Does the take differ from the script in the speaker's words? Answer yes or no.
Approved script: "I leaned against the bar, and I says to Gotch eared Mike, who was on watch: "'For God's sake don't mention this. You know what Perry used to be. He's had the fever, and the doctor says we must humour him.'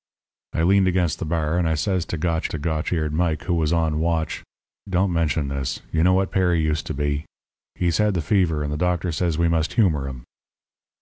yes